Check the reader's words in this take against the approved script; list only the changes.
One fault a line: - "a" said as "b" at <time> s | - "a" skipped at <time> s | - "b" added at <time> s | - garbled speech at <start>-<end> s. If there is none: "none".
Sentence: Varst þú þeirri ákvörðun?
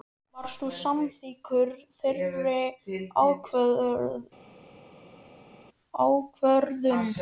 - "samþykkur" added at 0.8 s